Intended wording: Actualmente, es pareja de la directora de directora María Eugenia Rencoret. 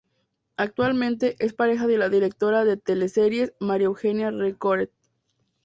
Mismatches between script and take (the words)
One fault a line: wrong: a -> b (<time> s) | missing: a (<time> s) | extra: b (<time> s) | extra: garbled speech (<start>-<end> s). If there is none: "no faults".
wrong: directora -> teleseries (2.8 s)